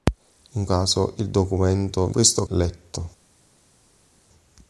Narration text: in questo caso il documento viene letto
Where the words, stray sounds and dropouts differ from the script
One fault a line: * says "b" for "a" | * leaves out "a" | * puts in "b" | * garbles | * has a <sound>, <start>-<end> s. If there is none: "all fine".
* leaves out "questo"
* says "questo" for "viene"